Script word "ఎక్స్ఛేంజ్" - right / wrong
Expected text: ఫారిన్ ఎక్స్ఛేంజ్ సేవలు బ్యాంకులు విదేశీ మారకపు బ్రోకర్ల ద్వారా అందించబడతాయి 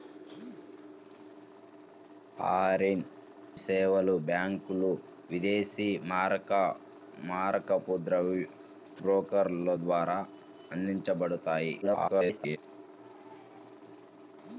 wrong